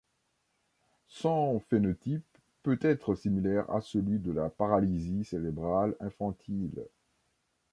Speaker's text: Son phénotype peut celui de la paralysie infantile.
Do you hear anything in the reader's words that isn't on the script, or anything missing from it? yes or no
yes